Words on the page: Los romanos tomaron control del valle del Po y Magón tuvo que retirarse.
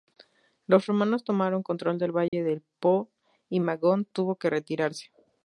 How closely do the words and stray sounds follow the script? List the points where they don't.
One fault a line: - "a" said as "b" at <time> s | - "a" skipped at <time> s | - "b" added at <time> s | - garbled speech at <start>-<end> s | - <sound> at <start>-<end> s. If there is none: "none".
- dropout at 2.3-2.3 s